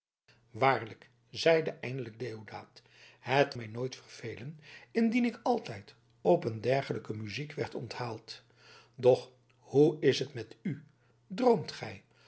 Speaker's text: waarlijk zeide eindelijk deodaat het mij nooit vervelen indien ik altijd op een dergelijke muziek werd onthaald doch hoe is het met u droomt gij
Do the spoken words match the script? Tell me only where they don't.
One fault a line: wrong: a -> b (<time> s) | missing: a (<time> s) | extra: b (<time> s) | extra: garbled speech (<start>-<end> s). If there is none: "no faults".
no faults